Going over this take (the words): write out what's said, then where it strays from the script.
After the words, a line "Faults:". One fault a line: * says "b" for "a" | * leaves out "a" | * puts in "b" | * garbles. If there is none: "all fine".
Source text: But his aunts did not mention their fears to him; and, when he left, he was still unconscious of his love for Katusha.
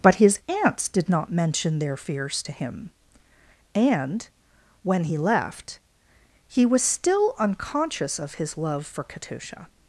But his aunts did not mention their fears to him; and, when he left, he was still unconscious of his love for Katusha.
Faults:
all fine